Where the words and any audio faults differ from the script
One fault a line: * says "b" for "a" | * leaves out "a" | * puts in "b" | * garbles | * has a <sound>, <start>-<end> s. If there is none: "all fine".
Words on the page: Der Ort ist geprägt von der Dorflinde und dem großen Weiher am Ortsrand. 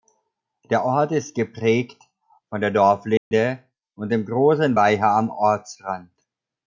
* has a dropout, 3.2-3.3 s